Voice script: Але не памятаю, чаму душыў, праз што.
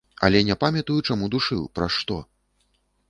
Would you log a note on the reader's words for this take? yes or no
no